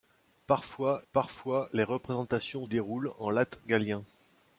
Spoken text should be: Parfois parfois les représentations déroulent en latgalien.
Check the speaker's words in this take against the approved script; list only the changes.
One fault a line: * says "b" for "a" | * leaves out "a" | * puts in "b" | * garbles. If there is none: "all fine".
all fine